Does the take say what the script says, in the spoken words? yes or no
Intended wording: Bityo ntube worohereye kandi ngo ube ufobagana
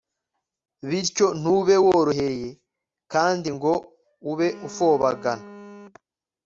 yes